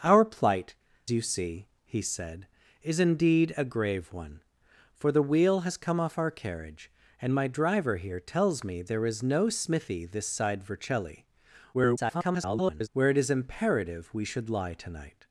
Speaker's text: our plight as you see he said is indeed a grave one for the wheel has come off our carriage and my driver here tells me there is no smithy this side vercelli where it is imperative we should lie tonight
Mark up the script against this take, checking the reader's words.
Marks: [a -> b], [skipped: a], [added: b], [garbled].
our plight [skipped: as] you see he said is indeed a grave one for the wheel has come off our carriage and my driver here tells me there is no smithy this side vercelli [garbled] where it is imperative we should lie tonight